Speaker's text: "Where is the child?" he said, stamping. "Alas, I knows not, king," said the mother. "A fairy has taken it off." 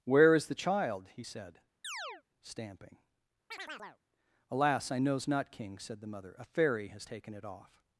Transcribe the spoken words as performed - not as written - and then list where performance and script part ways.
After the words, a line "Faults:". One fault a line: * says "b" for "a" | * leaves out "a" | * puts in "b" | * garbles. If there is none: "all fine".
"Where is the child?" he said, stamping. "Alas, I knows not, king," said the mother. "A fairy has taken it off."
Faults:
all fine